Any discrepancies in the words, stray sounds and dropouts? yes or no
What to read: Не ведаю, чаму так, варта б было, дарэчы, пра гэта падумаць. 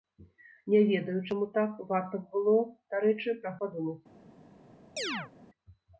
yes